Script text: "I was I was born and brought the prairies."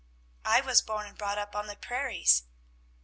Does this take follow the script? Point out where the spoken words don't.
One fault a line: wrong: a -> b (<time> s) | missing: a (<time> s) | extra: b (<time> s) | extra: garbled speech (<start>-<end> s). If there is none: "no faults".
missing: I was (0.8 s)
extra: up on (1.4 s)